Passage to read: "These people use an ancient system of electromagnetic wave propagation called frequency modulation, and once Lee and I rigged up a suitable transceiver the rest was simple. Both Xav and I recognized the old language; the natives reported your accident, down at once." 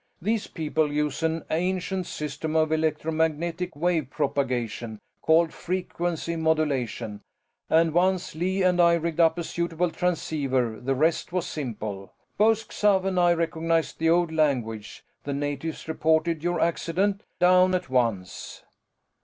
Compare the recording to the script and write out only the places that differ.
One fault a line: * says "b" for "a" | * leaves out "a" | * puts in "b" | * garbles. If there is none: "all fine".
all fine